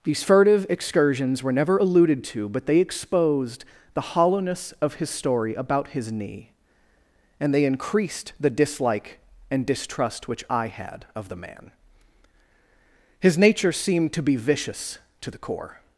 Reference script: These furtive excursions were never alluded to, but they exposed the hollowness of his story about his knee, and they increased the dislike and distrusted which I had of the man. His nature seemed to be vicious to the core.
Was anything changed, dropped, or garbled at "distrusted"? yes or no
yes